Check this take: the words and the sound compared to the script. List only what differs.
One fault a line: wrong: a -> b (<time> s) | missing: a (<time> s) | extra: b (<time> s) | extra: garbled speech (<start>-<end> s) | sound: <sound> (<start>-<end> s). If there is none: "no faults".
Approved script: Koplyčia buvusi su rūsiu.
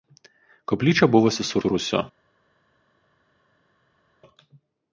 extra: su (1.6 s)